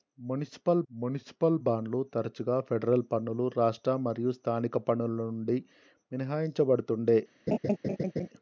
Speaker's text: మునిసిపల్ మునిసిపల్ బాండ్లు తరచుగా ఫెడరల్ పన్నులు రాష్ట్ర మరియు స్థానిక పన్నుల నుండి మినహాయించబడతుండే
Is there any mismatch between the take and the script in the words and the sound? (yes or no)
yes